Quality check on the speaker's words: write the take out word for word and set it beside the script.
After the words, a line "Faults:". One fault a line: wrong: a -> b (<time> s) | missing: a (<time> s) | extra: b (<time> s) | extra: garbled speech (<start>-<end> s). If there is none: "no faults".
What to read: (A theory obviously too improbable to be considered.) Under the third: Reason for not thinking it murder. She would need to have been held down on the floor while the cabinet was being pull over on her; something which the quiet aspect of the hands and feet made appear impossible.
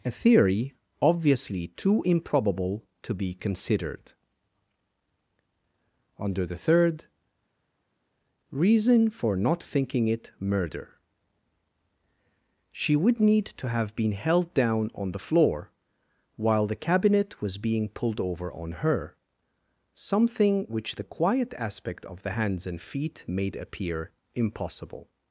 (A theory obviously too improbable to be considered.) Under the third: Reason for not thinking it murder. She would need to have been held down on the floor while the cabinet was being pulled over on her; something which the quiet aspect of the hands and feet made appear impossible.
Faults:
wrong: pull -> pulled (17.9 s)